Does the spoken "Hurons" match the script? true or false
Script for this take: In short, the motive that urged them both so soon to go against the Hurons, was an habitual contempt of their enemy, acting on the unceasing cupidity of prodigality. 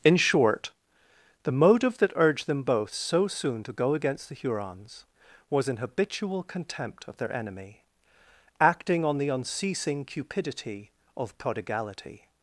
true